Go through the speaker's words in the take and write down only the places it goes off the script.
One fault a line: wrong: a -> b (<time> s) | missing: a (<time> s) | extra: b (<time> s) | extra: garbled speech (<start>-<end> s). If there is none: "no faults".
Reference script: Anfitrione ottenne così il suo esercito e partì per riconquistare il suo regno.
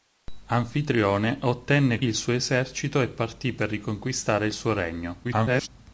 missing: così (2.0 s)
extra: garbled speech (5.2-5.7 s)